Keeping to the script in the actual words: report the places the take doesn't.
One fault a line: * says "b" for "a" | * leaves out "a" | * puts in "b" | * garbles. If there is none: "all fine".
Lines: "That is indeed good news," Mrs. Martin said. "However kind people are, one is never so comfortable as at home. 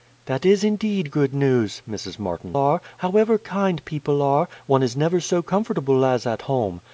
* says "are" for "said"